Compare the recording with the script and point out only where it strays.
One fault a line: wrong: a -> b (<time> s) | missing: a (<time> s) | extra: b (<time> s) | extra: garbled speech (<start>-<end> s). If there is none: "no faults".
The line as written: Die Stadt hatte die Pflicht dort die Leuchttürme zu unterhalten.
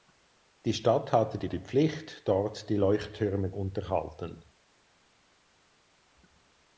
extra: die (1.5 s)
missing: zu (3.5 s)